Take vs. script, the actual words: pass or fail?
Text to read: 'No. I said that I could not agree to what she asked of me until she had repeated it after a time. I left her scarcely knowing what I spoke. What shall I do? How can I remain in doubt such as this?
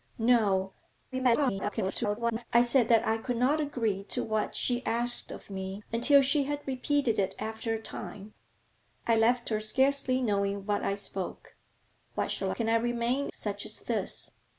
fail